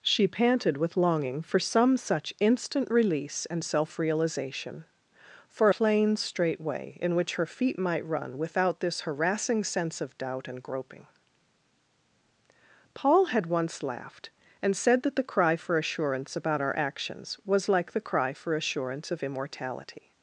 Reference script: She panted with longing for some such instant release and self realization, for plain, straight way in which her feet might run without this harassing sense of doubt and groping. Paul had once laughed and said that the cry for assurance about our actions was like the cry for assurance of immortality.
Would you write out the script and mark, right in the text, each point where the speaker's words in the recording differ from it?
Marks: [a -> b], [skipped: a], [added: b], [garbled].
She panted with longing for some such instant release and self realization, for plain, straight way in which her feet might run without this harassing sense of doubt and groping. Paul had once laughed and said that the cry for assurance about our actions was like the cry for assurance of immortality.